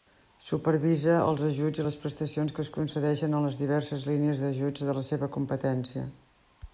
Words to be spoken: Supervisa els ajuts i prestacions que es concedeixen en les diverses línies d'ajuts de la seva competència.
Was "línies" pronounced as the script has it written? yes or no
yes